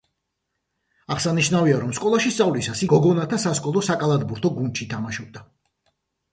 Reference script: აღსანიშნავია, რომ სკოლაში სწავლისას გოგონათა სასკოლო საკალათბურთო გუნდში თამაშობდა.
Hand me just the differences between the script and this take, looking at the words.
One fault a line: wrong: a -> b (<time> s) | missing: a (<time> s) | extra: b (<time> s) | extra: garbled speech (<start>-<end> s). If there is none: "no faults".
no faults